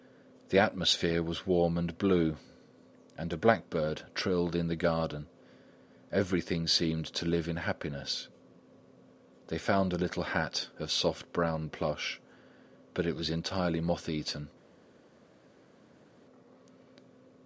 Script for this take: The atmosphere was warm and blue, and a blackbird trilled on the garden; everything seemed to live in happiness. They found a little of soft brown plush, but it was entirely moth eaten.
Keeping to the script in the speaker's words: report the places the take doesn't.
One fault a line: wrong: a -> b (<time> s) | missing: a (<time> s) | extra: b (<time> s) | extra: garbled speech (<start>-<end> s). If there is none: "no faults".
wrong: on -> in (4.5 s)
extra: hat (10.2 s)